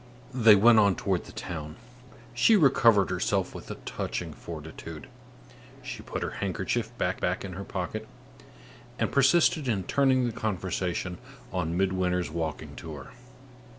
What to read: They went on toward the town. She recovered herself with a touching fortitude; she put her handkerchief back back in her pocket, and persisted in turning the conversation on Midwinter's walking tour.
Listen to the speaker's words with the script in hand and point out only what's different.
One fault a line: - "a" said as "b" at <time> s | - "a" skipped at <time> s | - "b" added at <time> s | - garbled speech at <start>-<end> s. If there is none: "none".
none